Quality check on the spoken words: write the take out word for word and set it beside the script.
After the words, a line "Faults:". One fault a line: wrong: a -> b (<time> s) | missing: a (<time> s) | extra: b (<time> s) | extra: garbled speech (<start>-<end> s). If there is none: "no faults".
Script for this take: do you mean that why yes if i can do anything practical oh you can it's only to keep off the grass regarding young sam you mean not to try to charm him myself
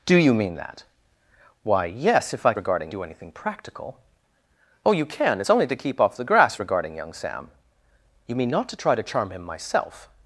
do you mean that why yes if i regarding do anything practical oh you can it's only to keep off the grass regarding young sam you mean not to try to charm him myself
Faults:
wrong: can -> regarding (2.6 s)